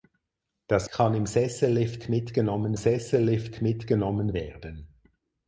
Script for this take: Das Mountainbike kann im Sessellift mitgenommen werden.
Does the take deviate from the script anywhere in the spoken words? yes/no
yes